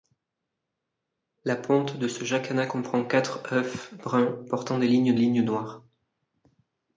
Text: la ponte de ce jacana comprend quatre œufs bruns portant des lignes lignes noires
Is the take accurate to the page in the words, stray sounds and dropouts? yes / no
yes